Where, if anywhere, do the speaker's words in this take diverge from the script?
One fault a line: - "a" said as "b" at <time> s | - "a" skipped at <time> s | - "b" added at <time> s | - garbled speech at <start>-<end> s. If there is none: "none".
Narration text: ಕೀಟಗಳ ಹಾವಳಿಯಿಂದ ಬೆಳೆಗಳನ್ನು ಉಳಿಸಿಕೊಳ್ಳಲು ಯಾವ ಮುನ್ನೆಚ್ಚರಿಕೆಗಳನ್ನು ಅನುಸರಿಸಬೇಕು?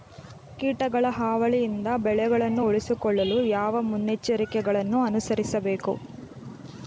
none